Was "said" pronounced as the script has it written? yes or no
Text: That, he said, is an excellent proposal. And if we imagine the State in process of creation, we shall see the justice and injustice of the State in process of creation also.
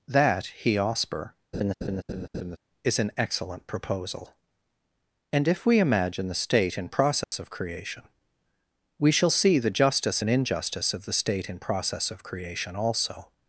no